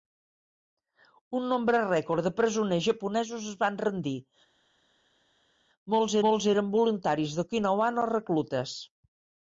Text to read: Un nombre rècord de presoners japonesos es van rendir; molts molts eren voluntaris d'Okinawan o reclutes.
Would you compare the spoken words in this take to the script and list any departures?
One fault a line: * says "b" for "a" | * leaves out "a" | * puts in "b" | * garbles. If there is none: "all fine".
all fine